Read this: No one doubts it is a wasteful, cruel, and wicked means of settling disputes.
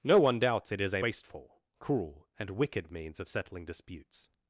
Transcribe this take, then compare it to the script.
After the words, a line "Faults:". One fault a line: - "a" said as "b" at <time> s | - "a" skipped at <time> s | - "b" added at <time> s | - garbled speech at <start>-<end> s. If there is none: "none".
No one doubts it is a wasteful, cruel, and wicked means of settling disputes.
Faults:
none